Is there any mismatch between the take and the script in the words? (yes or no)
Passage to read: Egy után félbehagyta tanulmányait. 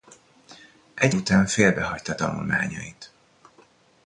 no